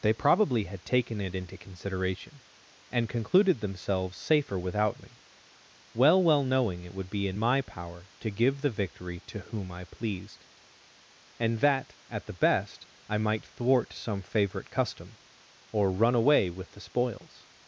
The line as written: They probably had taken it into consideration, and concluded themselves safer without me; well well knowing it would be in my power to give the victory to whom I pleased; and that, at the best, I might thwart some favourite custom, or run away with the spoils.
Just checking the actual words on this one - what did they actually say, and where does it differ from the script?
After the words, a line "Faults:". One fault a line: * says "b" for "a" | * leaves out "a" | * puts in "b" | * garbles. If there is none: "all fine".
They probably had taken it into consideration, and concluded themselves safer without me; well well knowing it would be in my power to give the victory to whom I pleased; and that, at the best, I might thwart some favourite custom, or run away with the spoils.
Faults:
all fine